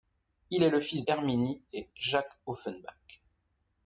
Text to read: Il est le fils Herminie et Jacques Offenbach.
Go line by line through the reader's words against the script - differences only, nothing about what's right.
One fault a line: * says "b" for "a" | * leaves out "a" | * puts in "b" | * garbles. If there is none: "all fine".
all fine